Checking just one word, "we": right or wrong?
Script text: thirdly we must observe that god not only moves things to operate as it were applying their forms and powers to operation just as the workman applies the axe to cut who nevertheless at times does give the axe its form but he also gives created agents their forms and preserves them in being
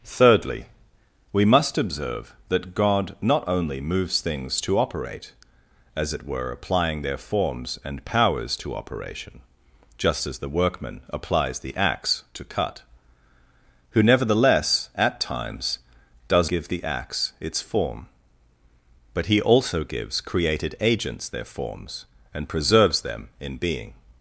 right